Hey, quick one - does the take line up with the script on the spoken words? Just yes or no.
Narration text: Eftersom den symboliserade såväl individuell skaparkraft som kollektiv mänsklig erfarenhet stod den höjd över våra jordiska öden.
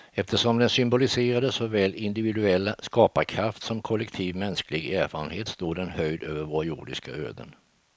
yes